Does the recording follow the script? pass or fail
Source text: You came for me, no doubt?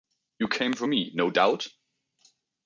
pass